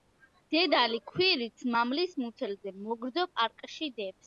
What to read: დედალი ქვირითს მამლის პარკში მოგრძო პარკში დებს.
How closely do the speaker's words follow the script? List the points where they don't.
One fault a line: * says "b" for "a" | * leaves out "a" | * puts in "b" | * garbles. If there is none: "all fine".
* says "მუცელზე" for "პარკში"